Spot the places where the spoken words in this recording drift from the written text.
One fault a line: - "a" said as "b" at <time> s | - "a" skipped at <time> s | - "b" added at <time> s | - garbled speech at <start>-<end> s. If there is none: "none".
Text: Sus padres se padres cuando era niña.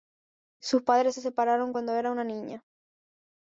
- "padres" said as "separaron" at 1.2 s
- "una" added at 2.1 s